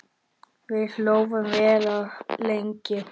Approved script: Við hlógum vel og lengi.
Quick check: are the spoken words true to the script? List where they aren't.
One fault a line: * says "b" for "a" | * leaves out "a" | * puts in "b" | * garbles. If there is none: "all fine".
all fine